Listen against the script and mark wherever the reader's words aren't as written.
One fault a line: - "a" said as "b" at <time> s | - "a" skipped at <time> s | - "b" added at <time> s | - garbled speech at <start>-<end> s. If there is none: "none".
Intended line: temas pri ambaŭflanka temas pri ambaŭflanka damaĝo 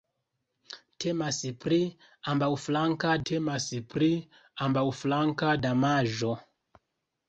none